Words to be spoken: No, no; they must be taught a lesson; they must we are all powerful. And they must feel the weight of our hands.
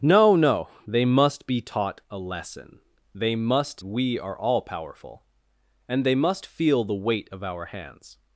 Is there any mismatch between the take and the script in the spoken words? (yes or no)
no